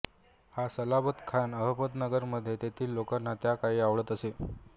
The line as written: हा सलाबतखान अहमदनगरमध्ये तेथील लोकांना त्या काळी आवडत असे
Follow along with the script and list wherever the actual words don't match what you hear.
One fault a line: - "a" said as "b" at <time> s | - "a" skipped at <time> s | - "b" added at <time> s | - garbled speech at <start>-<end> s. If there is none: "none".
none